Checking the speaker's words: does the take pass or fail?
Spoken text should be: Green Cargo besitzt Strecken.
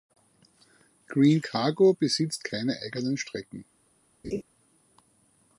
fail